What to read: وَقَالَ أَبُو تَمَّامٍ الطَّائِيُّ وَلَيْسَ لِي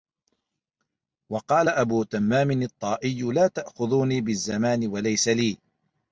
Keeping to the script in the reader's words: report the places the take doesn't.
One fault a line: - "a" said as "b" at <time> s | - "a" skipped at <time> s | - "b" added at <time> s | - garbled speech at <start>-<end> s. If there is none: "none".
- "لَا تَأْخُذُونِي بِالزَّمَانِ" added at 3.2 s